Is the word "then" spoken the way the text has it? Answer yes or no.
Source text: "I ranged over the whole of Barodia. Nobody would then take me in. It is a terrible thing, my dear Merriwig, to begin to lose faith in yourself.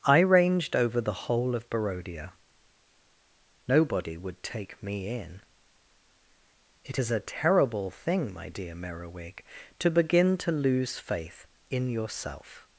no